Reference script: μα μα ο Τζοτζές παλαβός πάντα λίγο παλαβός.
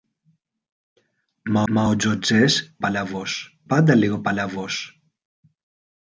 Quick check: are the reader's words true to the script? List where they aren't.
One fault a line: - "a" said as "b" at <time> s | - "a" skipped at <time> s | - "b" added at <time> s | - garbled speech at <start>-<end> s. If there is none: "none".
none